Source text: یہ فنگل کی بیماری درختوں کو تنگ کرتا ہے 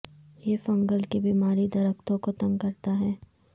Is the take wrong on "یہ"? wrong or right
right